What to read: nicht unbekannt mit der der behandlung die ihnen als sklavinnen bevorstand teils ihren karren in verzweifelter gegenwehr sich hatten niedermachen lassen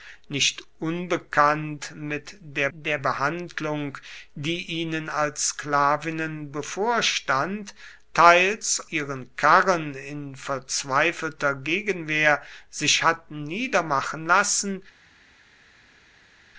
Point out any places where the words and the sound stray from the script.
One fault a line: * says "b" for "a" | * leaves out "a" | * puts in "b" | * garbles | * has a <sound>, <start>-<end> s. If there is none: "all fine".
all fine